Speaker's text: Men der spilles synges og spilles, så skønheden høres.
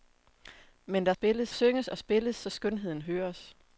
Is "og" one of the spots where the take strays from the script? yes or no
no